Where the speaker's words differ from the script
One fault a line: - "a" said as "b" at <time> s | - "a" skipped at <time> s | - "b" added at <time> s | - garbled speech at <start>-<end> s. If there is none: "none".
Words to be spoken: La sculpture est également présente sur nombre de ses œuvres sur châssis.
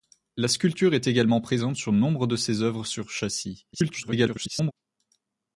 - garbled speech at 3.7-4.7 s